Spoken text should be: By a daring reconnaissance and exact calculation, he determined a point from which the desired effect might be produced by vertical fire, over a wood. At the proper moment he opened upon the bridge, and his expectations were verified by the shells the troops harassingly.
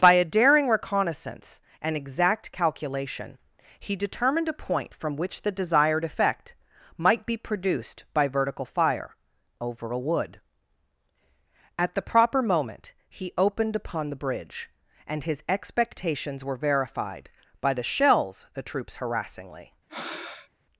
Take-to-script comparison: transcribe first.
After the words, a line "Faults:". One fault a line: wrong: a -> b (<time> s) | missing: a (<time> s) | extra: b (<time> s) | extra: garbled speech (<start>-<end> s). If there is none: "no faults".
By a daring reconnaissance and exact calculation, he determined a point from which the desired effect might be produced by vertical fire, over a wood. At the proper moment he opened upon the bridge, and his expectations were verified by the shells the troops harassingly.
Faults:
no faults